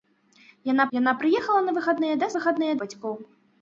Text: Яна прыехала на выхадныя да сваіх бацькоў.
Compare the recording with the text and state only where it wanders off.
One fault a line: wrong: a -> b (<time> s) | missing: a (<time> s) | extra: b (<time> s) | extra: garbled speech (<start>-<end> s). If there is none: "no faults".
extra: яна (1.0 s)
wrong: сваіх -> выхадныя (2.3 s)